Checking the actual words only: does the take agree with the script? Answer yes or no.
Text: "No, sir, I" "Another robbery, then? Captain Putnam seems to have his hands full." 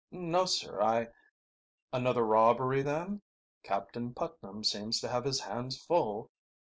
yes